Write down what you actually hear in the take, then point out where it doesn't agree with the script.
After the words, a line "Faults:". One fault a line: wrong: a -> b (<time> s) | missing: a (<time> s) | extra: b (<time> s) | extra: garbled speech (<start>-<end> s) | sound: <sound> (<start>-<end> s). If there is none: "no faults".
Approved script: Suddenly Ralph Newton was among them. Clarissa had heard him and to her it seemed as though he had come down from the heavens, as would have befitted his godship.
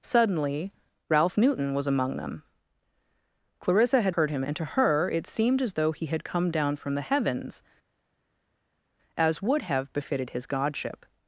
Suddenly Ralph Newton was among them. Clarissa had heard him and to her it seemed as though he had come down from the heavens, as would have befitted his godship.
Faults:
no faults